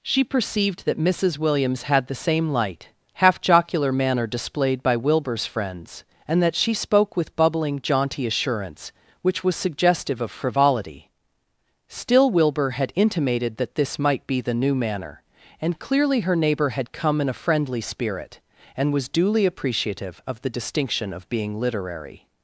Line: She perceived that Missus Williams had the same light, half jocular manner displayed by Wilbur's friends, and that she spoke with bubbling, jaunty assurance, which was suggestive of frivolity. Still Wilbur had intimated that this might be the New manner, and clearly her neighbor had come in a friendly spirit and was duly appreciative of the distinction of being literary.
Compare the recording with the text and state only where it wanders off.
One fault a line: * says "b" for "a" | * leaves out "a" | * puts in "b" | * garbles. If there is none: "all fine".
all fine